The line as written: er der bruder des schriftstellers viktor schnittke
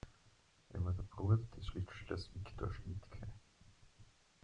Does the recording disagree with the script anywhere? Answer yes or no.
yes